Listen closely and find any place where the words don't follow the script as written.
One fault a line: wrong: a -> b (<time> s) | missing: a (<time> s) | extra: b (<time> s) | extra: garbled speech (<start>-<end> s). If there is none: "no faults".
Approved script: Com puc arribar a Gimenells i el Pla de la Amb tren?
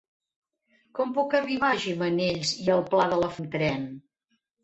no faults